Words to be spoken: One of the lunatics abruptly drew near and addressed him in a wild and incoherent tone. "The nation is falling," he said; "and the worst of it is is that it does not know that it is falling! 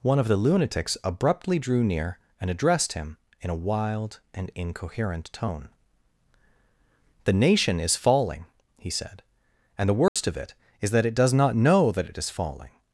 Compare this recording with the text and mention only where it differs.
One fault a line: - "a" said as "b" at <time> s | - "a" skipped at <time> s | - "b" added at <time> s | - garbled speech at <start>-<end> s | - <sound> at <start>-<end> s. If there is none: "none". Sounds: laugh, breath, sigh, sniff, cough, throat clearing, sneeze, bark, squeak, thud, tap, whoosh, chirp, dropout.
- dropout at 10.1-10.2 s
- "is" skipped at 10.9 s